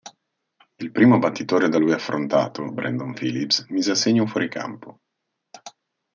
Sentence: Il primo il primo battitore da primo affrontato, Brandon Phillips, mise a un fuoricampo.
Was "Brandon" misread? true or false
false